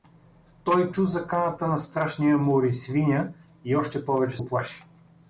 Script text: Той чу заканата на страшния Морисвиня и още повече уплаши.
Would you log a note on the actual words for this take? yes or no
no